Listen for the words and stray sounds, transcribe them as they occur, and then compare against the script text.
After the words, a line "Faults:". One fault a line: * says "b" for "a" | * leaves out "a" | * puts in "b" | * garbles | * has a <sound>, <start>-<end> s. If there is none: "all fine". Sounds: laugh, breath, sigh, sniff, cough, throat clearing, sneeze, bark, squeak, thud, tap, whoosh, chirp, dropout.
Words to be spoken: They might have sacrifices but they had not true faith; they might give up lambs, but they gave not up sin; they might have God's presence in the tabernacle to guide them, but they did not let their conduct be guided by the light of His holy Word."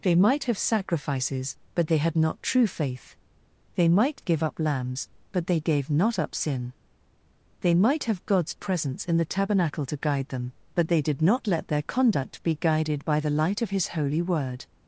They might have sacrifices but they had not true faith; they might give up lambs, but they gave not up sin; they might have God's presence in the tabernacle to guide them, but they did not let their conduct be guided by the light of His holy Word."
Faults:
all fine